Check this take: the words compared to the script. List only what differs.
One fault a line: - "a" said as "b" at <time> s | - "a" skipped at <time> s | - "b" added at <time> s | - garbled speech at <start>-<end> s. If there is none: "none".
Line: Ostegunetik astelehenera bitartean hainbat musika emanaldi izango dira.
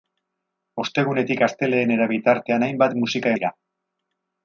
- "emanaldi izango" skipped at 3.4 s